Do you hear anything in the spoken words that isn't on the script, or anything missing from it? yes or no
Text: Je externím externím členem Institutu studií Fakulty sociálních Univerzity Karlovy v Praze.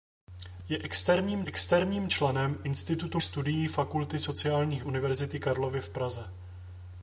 no